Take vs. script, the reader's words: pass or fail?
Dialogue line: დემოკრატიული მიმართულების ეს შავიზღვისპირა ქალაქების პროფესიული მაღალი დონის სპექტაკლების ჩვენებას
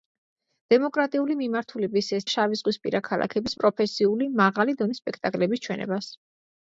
pass